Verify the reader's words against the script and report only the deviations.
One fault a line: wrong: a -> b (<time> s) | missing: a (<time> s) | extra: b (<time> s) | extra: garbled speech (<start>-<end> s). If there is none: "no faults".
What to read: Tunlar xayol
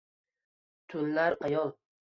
no faults